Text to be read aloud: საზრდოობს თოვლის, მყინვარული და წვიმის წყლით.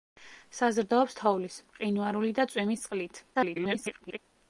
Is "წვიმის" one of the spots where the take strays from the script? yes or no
no